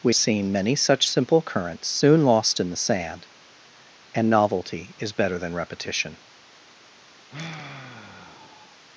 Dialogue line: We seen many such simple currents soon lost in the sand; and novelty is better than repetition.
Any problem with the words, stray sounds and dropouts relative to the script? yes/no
yes